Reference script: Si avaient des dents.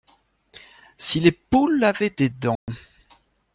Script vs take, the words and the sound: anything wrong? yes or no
yes